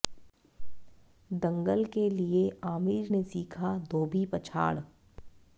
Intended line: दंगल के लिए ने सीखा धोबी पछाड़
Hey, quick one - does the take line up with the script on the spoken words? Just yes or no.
no